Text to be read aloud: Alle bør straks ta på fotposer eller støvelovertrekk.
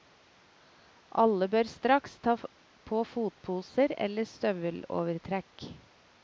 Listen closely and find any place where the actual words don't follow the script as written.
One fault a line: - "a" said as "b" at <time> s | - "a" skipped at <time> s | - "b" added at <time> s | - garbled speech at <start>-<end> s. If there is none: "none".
none